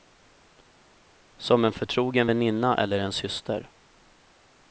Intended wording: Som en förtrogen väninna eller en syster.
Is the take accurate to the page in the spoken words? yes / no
yes